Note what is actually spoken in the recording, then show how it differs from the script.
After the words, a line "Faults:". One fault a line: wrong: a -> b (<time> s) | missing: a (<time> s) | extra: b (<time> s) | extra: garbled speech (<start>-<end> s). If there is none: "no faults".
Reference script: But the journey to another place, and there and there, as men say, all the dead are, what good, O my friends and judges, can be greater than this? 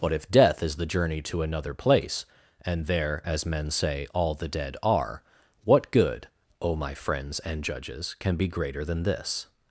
But if death is the journey to another place, and there, as men say, all the dead are, what good, O my friends and judges, can be greater than this?
Faults:
extra: if death is (0.1 s)
missing: and there (3.2 s)